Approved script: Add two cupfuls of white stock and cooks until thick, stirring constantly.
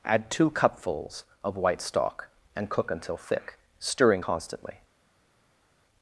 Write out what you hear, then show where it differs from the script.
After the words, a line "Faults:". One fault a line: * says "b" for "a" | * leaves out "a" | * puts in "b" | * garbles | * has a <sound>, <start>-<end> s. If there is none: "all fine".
Add two cupfuls of white stock and cook until thick, stirring constantly.
Faults:
* says "cook" for "cooks"